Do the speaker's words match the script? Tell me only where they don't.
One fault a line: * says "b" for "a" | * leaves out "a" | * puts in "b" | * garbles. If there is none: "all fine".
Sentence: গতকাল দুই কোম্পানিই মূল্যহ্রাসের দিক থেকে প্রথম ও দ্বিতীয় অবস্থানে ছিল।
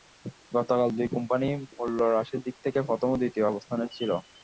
all fine